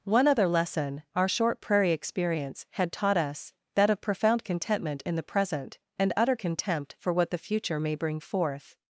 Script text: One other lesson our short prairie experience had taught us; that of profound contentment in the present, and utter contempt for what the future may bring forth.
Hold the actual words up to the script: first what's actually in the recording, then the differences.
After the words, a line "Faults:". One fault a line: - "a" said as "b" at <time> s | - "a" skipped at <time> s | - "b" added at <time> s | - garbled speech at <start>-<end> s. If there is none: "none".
One other lesson our short prairie experience had taught us; that of profound contentment in the present, and utter contempt for what the future may bring forth.
Faults:
none